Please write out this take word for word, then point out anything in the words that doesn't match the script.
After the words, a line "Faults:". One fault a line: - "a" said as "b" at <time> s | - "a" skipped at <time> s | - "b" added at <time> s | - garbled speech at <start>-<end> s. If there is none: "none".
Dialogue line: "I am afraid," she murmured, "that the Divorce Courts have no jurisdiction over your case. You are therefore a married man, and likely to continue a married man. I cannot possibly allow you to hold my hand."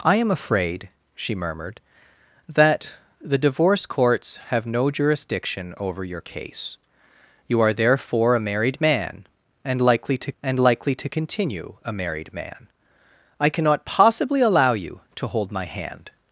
"I am afraid," she murmured, "that the Divorce Courts have no jurisdiction over your case. You are therefore a married man, and likely to and likely to continue a married man. I cannot possibly allow you to hold my hand."
Faults:
- "and likely to" added at 10.4 s